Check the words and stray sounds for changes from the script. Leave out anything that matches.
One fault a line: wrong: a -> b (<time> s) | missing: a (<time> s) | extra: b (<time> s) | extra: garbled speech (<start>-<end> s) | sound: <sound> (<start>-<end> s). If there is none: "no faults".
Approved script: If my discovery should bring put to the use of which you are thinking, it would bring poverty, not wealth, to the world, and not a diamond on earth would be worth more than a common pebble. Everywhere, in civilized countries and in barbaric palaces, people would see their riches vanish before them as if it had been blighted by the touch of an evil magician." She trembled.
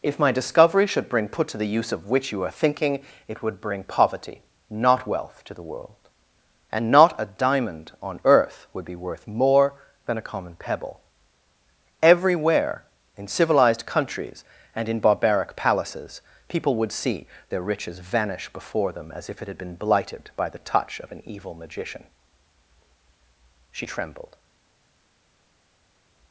no faults